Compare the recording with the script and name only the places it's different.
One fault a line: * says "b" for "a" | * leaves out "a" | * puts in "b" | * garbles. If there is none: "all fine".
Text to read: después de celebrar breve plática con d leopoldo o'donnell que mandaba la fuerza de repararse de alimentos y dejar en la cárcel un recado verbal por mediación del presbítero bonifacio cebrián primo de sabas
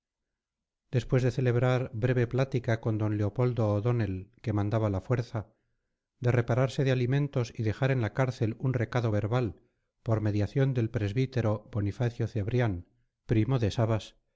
all fine